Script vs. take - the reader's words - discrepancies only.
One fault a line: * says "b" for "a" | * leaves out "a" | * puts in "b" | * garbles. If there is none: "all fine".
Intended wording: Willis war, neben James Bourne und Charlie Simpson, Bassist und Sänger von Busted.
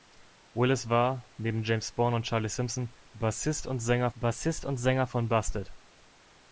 * puts in "Bassist und Sänger"